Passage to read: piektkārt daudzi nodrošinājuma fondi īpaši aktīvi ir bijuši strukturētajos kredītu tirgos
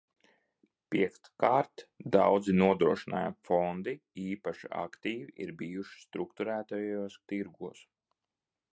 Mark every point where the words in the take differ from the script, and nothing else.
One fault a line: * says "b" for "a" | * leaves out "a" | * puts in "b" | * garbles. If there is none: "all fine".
* leaves out "kredītu"